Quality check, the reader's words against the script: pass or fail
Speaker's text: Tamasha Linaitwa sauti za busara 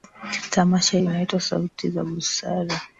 pass